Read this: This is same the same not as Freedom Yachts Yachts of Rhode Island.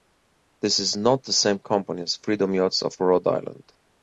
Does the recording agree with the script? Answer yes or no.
no